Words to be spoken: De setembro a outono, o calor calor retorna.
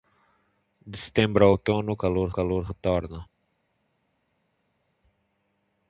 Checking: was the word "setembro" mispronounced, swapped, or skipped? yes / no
no